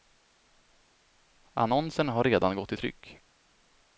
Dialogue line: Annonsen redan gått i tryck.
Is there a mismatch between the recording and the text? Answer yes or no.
yes